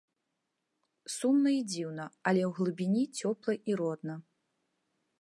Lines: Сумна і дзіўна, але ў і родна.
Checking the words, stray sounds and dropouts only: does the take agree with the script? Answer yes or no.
no